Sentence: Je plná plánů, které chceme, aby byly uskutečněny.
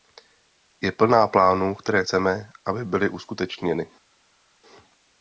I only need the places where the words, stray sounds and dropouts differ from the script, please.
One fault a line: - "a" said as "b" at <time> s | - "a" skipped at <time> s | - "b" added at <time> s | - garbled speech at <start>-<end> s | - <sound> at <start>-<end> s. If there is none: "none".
none